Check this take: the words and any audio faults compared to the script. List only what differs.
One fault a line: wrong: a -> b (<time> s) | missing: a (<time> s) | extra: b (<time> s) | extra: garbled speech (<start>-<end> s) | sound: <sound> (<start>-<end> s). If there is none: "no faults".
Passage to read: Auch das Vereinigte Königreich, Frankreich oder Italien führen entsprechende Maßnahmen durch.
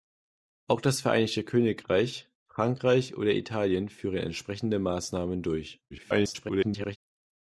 extra: garbled speech (5.9-7.0 s)